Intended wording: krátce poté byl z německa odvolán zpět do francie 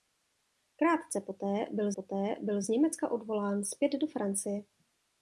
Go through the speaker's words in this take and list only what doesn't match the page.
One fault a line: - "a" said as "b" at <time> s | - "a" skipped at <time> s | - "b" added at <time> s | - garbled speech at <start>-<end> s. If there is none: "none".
- "poté byl" added at 1.9 s